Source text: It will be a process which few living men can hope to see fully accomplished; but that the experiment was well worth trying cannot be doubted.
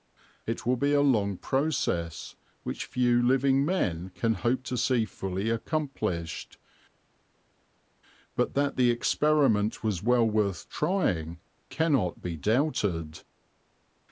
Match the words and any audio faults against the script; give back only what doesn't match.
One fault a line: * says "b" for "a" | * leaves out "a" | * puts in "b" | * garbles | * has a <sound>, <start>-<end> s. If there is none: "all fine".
* puts in "long"